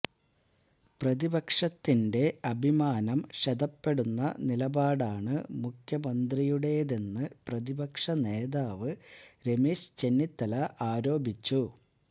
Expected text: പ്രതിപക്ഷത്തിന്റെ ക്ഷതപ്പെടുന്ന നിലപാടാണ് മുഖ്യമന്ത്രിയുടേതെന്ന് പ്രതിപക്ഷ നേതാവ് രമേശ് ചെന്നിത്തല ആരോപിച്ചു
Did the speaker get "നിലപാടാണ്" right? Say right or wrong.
right